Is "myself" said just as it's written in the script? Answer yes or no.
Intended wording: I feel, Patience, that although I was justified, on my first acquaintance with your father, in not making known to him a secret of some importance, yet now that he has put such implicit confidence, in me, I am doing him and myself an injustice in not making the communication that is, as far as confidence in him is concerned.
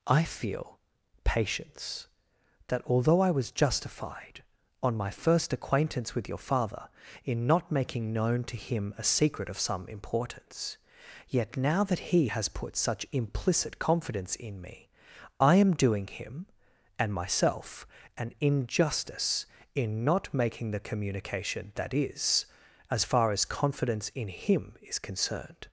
yes